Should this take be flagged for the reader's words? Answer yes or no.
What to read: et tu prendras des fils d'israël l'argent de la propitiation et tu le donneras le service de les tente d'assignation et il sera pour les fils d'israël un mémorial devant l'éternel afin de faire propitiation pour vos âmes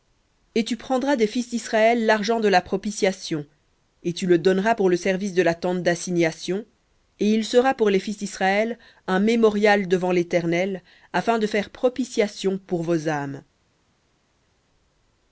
yes